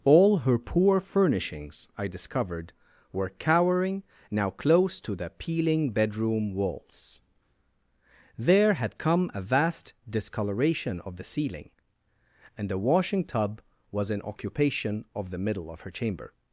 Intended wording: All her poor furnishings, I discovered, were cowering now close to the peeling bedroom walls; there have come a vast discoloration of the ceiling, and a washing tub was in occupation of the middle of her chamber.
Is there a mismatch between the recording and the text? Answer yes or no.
yes